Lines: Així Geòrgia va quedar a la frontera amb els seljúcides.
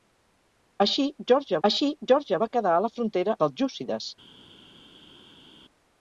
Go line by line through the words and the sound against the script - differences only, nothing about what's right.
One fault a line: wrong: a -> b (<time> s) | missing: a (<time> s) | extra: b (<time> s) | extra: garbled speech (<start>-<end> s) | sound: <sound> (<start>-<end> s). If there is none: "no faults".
extra: així Geòrgia (1.7 s)
missing: amb els (3.4 s)